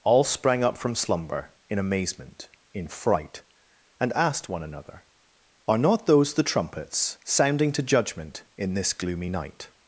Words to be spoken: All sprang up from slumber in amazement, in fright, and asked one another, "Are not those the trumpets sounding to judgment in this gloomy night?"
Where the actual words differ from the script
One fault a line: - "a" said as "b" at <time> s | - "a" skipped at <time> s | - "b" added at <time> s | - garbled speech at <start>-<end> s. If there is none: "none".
none